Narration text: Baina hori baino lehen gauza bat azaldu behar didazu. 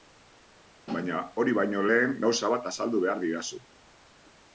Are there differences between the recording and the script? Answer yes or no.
no